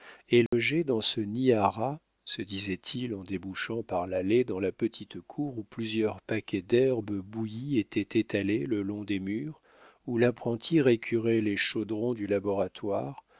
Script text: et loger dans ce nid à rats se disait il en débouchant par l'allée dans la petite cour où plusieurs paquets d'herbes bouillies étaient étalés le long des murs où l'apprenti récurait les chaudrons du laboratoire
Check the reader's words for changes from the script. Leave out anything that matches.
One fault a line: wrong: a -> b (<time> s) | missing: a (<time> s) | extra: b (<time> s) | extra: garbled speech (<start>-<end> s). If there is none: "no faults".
no faults